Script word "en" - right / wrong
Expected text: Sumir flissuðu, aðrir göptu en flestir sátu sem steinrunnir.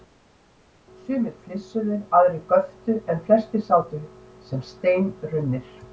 right